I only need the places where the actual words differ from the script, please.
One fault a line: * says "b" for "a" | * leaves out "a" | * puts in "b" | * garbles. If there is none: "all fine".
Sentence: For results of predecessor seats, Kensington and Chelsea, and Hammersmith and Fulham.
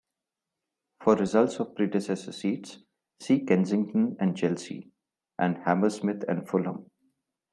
* puts in "see"